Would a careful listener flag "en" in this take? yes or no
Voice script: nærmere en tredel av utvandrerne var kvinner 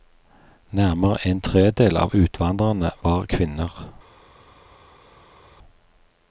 no